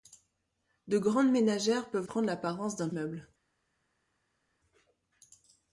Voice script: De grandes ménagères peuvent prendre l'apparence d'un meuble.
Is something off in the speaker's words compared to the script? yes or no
no